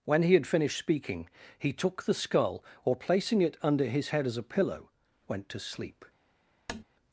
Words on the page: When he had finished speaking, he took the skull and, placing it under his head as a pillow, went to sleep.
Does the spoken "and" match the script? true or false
false